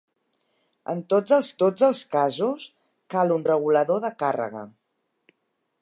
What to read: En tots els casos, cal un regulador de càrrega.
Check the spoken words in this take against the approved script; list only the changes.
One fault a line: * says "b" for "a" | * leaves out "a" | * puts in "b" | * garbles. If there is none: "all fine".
* puts in "tots els"